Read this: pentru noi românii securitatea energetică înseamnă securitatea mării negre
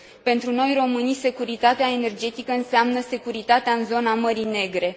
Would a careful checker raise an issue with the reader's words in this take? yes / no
yes